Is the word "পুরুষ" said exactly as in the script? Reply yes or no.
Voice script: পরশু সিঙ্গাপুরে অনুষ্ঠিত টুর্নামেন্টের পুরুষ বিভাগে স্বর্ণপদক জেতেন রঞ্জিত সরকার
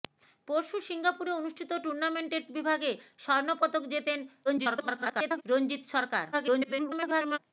no